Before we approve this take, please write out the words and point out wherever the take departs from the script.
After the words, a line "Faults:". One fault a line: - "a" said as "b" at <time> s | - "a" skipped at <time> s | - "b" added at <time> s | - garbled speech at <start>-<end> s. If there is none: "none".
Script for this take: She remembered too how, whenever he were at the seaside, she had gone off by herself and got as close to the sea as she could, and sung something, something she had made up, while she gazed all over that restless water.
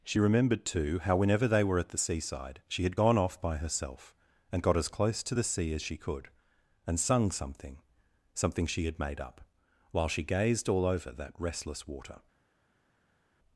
She remembered too how, whenever they were at the seaside, she had gone off by herself and got as close to the sea as she could, and sung something, something she had made up, while she gazed all over that restless water.
Faults:
- "he" said as "they" at 1.5 s